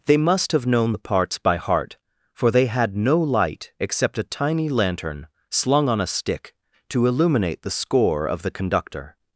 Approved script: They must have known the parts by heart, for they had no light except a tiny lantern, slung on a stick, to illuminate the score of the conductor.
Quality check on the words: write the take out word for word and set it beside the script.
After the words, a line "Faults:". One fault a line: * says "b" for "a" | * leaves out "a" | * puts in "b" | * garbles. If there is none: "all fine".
They must have known the parts by heart, for they had no light except a tiny lantern, slung on a stick, to illuminate the score of the conductor.
Faults:
all fine